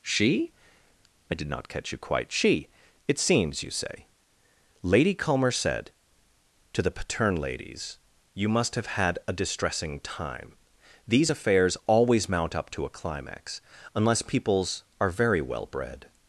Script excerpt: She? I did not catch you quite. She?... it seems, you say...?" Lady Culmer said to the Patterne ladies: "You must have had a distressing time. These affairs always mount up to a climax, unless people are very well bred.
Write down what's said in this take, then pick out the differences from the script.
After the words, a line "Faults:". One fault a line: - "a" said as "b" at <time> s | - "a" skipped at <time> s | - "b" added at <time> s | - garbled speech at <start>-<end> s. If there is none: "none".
She? I did not catch you quite. She?... it seems, you say...?" Lady Culmer said to the Patterne ladies: "You must have had a distressing time. These affairs always mount up to a climax, unless peoples are very well bred.
Faults:
- "people" said as "peoples" at 14.2 s